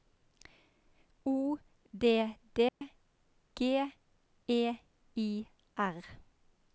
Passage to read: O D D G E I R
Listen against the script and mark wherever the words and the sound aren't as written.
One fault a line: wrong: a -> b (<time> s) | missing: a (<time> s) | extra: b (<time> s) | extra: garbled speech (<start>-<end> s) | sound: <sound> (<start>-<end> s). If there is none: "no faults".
sound: dropout (2.7-2.8 s)